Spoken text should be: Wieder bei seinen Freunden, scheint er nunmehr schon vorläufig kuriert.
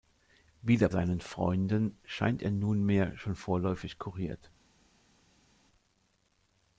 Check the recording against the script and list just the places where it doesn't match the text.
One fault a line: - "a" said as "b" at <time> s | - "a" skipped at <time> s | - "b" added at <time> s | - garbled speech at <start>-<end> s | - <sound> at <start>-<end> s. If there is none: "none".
- "bei" skipped at 0.9 s